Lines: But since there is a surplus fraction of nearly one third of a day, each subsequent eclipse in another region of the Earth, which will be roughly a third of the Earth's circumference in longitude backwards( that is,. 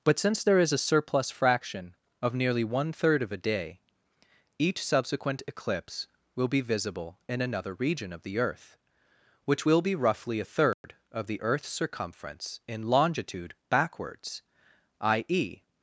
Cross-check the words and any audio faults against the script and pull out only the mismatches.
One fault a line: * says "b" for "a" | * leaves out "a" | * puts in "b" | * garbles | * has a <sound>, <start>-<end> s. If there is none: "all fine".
* puts in "will be visible"
* has a dropout, 10.7-10.8 s